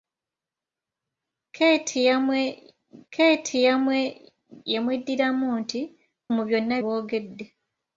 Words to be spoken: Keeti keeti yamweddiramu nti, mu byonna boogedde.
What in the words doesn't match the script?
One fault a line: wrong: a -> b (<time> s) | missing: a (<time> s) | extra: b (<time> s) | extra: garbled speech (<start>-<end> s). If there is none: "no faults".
no faults